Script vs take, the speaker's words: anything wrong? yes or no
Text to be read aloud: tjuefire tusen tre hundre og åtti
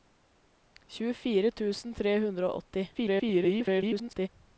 yes